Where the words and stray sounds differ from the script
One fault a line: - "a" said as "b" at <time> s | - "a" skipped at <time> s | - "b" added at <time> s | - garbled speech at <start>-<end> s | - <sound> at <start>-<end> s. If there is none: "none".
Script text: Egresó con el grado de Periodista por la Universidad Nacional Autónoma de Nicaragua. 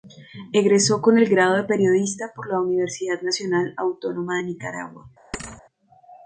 - thud at 5.3-5.6 s